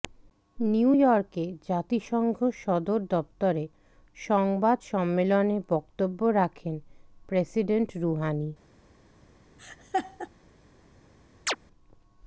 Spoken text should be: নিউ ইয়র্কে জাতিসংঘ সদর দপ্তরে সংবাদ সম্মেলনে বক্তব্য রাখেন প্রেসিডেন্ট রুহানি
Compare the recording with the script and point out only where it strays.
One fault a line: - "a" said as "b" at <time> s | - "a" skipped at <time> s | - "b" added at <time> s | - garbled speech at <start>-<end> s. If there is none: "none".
none